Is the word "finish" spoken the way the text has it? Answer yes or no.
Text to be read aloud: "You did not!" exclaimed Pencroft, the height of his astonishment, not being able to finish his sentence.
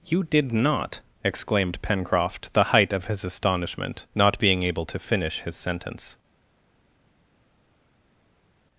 yes